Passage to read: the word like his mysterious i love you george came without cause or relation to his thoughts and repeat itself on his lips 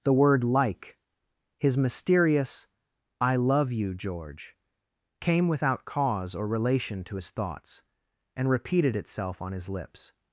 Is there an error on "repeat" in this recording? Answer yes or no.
yes